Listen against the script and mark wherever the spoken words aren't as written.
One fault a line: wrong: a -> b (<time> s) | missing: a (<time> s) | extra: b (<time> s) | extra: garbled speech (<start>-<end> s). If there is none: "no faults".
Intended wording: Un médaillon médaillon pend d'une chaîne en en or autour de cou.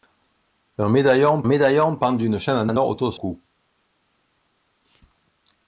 no faults